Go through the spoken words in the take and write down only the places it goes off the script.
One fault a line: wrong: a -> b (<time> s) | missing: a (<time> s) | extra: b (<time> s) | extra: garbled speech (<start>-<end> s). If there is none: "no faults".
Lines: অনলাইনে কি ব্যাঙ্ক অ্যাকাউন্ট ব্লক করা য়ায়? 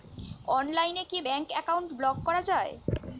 no faults